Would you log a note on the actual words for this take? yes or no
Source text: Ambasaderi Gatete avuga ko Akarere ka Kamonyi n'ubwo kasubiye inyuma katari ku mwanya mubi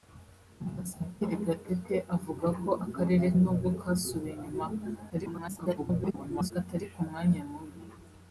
yes